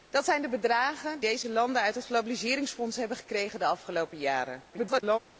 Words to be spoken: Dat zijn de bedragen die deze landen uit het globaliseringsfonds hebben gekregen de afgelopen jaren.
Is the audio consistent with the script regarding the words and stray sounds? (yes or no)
no